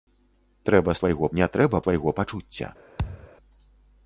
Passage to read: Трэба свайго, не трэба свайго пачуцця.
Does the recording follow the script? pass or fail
pass